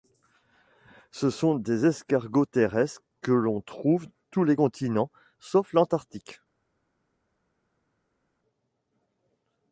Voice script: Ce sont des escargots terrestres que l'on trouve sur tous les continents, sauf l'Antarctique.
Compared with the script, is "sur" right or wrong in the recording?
wrong